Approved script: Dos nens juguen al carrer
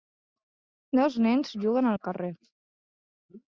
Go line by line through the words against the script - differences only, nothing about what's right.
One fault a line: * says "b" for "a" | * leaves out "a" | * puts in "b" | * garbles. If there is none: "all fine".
all fine